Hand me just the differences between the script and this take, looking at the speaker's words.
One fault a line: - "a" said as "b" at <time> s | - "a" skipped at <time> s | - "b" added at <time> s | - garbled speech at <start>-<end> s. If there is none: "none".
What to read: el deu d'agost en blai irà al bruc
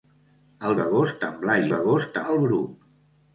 - "deu" skipped at 0.8 s
- "irà" said as "d'agost" at 1.7 s